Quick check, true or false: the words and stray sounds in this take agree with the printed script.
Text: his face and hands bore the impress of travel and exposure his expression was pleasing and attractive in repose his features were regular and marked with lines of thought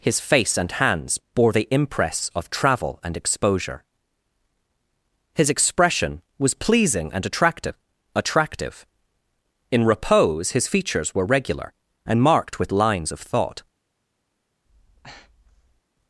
false